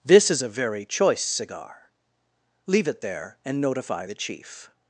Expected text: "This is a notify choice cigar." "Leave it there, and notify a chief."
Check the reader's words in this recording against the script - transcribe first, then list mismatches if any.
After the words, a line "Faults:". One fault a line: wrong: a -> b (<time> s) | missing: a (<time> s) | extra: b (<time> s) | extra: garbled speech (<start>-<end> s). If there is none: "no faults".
"This is a very choice cigar." "Leave it there, and notify the chief."
Faults:
wrong: notify -> very (0.5 s)
wrong: a -> the (4.0 s)